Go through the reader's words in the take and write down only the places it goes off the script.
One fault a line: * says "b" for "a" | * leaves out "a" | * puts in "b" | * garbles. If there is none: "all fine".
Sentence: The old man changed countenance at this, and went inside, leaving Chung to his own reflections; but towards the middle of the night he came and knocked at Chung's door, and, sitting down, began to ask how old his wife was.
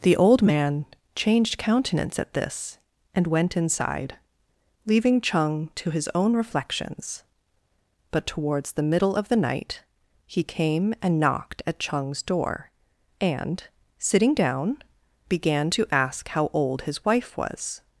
all fine